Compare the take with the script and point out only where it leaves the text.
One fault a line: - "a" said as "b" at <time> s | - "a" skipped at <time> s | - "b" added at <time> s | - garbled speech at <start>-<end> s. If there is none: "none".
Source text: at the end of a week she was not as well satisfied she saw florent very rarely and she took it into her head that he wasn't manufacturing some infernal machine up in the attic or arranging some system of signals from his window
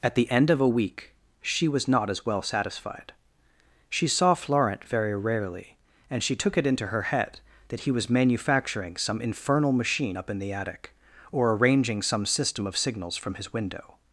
- "wasn't" said as "was" at 7.9 s